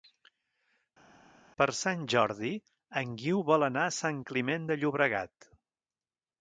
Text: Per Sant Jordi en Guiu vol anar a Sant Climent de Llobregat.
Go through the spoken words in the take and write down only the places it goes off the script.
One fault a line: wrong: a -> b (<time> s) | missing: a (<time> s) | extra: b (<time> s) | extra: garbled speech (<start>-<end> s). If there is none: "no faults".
no faults